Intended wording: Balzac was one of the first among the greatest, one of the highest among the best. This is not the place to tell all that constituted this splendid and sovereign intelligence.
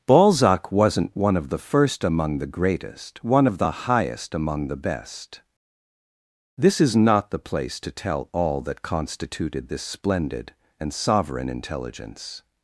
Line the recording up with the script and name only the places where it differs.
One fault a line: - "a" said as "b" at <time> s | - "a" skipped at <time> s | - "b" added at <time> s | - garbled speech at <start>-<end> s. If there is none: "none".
- "was" said as "wasn't" at 0.7 s